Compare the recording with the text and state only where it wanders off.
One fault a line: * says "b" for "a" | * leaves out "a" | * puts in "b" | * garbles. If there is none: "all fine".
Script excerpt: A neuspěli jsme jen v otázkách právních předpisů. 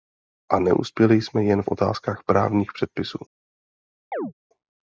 all fine